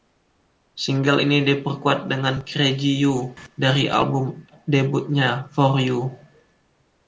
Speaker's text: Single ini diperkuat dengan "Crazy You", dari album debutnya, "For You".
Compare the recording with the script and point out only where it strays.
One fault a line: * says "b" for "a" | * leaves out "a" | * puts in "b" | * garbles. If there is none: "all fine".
all fine